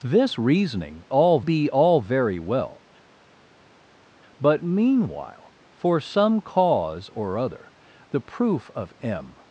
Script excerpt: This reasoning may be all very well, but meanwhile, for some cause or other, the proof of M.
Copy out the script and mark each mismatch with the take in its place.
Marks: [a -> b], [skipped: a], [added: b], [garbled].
This reasoning [may -> all] be all very well, but meanwhile, for some cause or other, the proof of M.